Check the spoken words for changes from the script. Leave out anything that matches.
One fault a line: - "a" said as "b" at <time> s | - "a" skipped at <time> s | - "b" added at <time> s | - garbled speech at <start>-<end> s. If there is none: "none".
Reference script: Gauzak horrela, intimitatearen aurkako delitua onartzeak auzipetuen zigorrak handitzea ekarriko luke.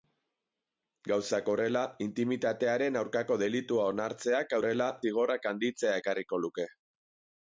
- "auzipetuen" said as "horrela" at 4.6 s